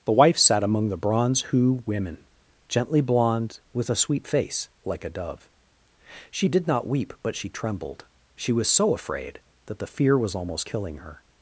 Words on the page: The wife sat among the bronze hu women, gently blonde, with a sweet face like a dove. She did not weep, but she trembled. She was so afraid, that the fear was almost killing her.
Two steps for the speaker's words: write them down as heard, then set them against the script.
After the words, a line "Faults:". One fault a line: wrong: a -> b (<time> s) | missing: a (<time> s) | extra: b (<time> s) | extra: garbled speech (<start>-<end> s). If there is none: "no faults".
The wife sat among the bronze hu women, gently blonde, with a sweet face like a dove. She did not weep, but she trembled. She was so afraid, that the fear was almost killing her.
Faults:
no faults